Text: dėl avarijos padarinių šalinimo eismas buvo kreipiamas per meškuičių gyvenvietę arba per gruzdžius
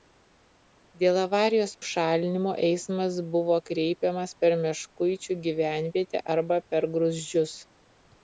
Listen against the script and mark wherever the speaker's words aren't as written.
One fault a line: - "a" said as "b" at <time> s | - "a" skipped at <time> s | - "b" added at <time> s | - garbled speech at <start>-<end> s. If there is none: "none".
- "padarinių" skipped at 1.7 s